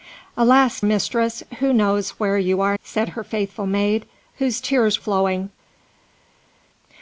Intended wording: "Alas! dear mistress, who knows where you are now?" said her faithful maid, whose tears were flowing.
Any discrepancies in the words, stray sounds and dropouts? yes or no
yes